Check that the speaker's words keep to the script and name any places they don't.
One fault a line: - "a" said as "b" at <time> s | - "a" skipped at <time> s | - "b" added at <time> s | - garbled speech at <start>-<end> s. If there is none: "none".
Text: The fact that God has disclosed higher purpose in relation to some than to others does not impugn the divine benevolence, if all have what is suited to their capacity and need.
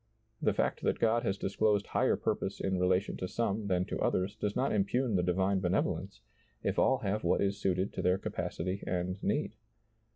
none